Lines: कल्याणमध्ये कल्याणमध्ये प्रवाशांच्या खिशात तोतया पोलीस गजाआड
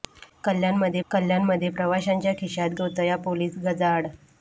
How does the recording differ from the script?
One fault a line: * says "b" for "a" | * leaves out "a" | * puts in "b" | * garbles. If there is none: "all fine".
all fine